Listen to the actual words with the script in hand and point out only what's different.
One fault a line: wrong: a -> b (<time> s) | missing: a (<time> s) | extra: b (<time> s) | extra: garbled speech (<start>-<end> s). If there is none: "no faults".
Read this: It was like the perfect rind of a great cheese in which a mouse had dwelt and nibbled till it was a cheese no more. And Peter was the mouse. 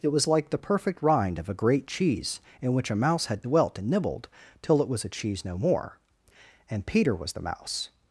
no faults